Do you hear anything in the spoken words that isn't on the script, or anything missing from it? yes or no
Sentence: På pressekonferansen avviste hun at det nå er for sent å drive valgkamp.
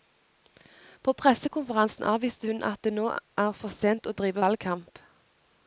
no